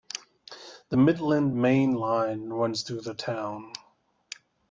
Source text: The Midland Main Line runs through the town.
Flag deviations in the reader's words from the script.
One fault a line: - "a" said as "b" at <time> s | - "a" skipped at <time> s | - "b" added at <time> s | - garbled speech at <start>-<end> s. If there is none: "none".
none